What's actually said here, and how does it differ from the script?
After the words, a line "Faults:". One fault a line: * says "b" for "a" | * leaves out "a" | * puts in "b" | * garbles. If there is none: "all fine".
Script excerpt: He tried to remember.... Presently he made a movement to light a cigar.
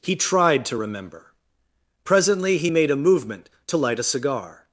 He tried to remember.... Presently he made a movement to light a cigar.
Faults:
all fine